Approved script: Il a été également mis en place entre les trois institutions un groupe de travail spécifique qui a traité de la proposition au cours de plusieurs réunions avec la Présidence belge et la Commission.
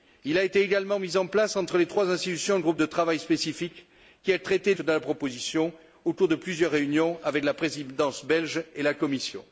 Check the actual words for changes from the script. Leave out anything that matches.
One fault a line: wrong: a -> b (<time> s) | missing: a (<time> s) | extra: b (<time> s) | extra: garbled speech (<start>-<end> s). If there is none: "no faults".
no faults